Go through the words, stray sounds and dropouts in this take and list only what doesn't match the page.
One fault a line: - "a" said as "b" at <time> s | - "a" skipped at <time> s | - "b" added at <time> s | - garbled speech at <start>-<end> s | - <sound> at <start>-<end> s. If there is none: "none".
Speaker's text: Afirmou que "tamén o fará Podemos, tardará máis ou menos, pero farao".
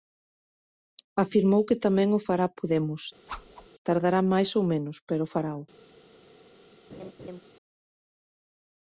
- whoosh at 3.3-3.7 s
- laugh at 6.9-7.4 s